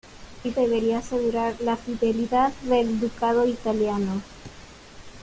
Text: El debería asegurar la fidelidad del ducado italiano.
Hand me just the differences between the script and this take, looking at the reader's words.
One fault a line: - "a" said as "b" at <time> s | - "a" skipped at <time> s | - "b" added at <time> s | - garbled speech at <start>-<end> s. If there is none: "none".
none